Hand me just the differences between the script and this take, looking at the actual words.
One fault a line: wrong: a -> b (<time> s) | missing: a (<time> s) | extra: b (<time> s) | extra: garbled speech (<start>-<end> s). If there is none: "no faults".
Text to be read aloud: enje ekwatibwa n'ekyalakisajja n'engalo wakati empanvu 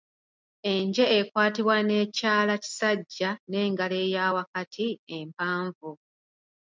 extra: eya (4.0 s)